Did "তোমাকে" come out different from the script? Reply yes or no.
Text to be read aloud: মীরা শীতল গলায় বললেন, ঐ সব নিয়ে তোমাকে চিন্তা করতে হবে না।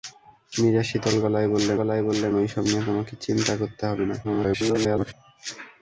no